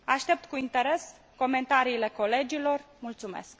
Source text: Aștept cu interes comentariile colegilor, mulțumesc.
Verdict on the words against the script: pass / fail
pass